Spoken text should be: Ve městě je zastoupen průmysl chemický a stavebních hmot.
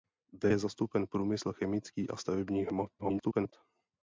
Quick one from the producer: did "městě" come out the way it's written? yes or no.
no